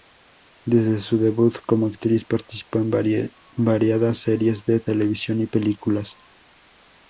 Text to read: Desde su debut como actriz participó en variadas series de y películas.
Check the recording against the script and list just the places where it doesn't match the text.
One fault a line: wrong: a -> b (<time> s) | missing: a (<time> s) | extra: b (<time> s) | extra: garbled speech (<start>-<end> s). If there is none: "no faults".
extra: televisión (4.8 s)